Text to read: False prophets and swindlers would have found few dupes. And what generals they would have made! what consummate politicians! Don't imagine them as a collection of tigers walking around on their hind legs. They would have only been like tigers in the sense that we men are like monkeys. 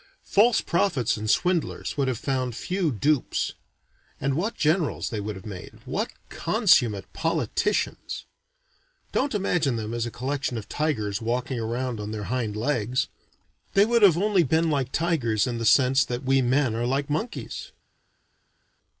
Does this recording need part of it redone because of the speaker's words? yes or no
no